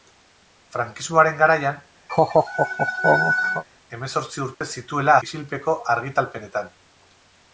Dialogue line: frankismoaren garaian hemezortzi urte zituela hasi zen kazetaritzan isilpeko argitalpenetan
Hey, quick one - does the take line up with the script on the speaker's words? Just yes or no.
no